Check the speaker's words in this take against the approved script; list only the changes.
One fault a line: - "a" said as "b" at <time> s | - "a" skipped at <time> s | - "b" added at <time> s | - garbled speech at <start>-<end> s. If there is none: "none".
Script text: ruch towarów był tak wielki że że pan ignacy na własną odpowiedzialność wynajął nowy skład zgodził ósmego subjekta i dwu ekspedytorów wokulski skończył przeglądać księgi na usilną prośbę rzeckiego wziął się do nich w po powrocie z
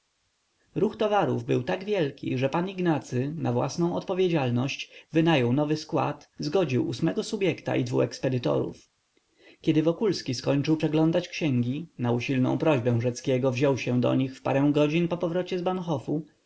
- "że" skipped at 2.5 s
- "kiedy" added at 9.6 s
- "parę godzin" added at 14.4 s